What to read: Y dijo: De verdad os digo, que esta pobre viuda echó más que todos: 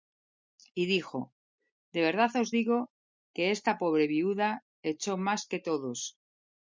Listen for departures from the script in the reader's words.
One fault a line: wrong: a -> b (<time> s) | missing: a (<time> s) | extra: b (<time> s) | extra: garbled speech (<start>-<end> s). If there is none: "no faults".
no faults